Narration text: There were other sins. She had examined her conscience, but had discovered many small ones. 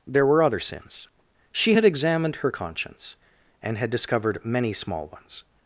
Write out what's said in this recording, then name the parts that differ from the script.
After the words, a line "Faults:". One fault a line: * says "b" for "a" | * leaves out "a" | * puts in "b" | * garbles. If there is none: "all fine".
There were other sins. She had examined her conscience, and had discovered many small ones.
Faults:
* says "and" for "but"